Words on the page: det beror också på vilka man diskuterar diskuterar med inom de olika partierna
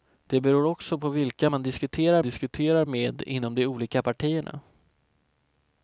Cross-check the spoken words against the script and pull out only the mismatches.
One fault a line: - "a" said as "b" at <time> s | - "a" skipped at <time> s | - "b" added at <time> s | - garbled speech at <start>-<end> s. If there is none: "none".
none